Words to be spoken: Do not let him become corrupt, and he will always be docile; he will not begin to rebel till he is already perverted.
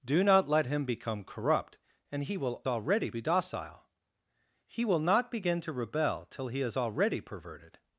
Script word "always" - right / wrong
wrong